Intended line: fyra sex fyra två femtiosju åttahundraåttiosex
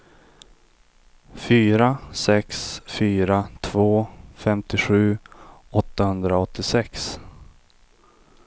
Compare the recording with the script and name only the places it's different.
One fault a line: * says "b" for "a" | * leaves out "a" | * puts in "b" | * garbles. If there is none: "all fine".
all fine